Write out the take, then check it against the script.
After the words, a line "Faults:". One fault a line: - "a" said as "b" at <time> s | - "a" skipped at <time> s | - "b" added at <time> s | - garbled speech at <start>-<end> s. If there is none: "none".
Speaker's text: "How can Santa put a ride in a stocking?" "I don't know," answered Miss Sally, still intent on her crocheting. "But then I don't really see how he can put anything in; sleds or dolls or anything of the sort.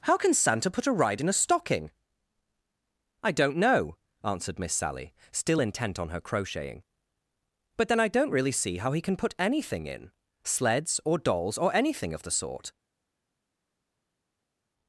"How can Santa put a ride in a stocking?" "I don't know," answered Miss Sally, still intent on her crocheting. "But then I don't really see how he can put anything in; sleds or dolls or anything of the sort.
Faults:
none